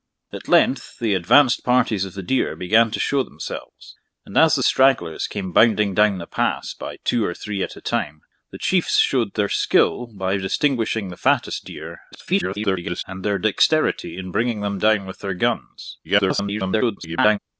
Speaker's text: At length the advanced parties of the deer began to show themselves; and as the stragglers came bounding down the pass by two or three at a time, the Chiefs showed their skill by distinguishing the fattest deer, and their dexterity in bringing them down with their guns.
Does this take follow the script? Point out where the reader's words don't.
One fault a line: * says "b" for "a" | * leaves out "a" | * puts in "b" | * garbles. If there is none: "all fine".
* garbles
* garbles